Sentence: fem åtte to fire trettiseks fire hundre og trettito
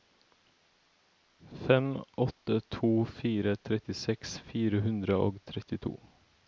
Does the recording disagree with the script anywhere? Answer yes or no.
no